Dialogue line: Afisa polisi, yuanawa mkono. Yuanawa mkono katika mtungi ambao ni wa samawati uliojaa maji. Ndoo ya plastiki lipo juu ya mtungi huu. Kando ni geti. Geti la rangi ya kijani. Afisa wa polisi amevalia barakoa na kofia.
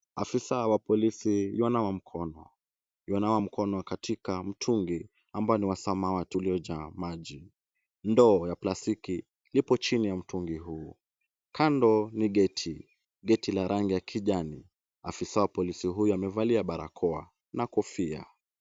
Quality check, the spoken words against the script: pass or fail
fail